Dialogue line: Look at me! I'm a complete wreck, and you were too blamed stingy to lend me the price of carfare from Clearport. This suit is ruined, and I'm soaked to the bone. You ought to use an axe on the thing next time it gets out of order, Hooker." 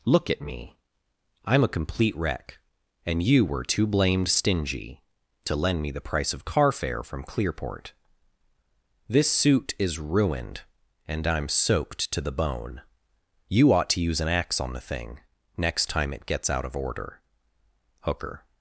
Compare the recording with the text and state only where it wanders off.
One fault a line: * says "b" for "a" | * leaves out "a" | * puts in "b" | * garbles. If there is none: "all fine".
all fine